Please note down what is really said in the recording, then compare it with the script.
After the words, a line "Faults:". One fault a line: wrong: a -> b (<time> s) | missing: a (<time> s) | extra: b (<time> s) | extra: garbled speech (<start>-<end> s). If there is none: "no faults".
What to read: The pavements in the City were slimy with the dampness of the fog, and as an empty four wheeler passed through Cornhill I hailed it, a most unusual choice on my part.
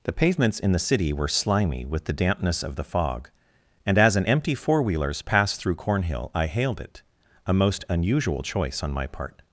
The pavements in the City were slimy with the dampness of the fog, and as an empty four wheelers passed through Cornhill I hailed it, a most unusual choice on my part.
Faults:
wrong: wheeler -> wheelers (4.8 s)